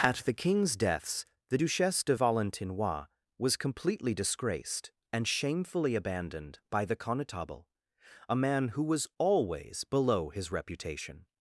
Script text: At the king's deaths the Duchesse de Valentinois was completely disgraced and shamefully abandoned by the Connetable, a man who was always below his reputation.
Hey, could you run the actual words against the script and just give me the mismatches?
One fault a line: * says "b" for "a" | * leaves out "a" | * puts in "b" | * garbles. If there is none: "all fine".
all fine